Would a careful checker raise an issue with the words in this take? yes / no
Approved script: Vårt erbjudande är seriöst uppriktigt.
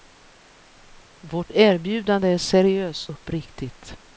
no